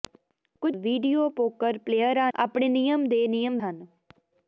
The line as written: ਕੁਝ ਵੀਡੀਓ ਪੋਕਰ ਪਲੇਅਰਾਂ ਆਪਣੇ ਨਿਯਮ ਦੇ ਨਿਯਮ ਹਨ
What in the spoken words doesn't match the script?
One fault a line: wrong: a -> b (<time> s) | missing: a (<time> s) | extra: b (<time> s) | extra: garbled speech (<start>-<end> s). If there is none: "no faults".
no faults